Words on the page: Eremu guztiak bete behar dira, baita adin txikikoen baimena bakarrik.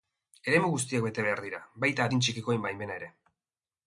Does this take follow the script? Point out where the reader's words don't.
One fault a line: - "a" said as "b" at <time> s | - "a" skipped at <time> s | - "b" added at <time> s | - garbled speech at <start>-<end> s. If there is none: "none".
- "bakarrik" said as "ere" at 3.0 s